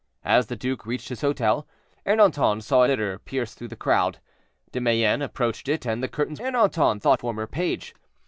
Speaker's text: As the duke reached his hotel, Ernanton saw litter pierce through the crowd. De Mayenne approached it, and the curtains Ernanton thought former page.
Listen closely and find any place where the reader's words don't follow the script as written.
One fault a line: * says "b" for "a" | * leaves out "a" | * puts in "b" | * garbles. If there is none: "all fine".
all fine